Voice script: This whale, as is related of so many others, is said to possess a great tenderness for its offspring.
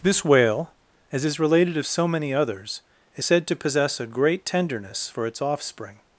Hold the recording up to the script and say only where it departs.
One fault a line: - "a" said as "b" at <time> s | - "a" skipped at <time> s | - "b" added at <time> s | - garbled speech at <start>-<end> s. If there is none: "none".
none